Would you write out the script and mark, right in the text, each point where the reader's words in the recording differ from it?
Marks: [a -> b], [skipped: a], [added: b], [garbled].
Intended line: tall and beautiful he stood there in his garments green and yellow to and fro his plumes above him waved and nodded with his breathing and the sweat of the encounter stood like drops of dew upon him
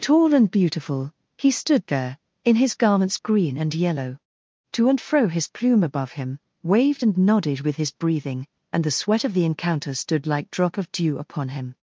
tall and beautiful he stood there in his garments green and yellow to and fro his [plumes -> plume] above him waved and nodded with his breathing and the sweat of the encounter stood like [drops -> drop] of dew upon him